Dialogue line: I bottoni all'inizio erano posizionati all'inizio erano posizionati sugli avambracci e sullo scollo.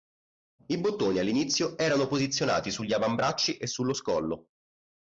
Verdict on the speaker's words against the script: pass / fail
fail